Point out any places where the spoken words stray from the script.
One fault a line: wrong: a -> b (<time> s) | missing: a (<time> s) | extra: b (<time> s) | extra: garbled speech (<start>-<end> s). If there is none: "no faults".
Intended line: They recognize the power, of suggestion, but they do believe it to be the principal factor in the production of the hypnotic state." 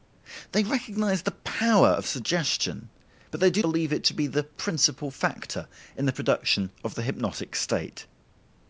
no faults